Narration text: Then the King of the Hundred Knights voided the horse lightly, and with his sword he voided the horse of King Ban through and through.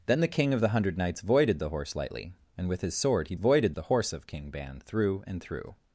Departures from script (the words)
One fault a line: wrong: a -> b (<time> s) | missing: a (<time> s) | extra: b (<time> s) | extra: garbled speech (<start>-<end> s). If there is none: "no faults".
no faults